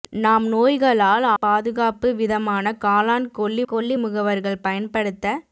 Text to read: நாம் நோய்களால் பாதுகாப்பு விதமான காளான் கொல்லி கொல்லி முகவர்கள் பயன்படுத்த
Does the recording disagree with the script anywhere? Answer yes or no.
no